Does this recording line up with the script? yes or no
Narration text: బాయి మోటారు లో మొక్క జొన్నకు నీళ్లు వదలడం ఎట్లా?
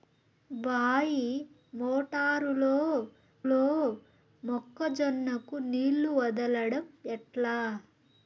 no